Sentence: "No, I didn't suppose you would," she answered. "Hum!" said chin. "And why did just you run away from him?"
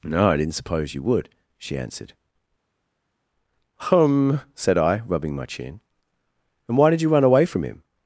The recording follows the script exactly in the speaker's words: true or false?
false